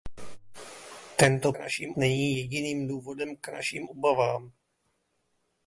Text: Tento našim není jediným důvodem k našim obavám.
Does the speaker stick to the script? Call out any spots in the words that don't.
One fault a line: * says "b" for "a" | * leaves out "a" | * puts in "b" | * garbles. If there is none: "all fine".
all fine